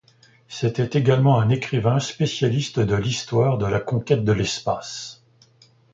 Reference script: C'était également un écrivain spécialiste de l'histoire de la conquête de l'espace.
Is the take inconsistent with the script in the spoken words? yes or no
no